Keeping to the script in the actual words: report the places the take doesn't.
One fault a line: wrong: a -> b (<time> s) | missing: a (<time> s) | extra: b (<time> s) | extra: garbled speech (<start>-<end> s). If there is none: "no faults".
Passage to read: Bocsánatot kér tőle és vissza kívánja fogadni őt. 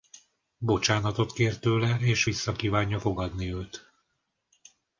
no faults